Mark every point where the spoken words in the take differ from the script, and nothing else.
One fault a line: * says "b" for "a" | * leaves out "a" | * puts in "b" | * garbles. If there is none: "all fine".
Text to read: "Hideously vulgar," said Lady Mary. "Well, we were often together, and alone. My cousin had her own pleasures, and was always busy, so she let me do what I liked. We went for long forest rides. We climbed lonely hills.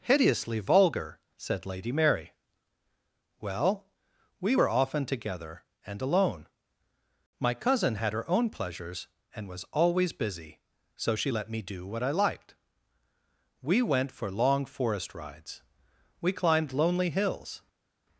all fine